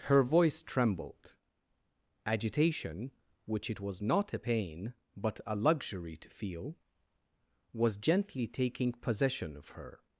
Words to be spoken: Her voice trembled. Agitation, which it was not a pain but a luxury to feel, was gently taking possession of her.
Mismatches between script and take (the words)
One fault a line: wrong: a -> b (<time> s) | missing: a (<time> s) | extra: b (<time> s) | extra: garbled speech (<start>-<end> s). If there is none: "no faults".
no faults